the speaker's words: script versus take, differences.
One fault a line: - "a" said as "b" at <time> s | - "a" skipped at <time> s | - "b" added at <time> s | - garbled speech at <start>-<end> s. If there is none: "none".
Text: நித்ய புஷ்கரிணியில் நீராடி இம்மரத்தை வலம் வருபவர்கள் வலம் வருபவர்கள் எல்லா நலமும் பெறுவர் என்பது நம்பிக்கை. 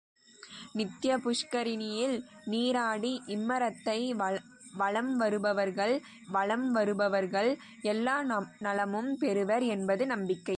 none